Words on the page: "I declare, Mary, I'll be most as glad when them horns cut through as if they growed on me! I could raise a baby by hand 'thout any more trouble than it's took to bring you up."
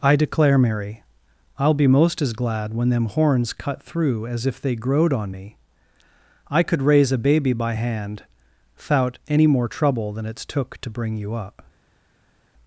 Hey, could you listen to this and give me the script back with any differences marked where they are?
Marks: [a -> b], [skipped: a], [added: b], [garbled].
"I declare, Mary, I'll be most as glad when them horns cut through as if they growed on me! I could raise a baby by hand 'thout any more trouble than it's took to bring you up."